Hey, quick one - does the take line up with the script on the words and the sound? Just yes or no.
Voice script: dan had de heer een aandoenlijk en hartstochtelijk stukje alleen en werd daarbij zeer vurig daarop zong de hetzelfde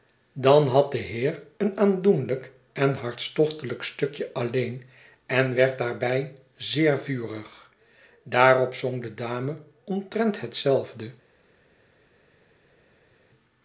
no